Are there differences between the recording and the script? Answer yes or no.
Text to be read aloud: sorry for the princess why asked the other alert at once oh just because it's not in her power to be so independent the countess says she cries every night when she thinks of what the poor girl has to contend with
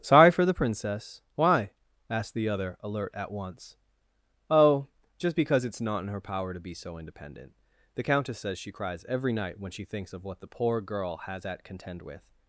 yes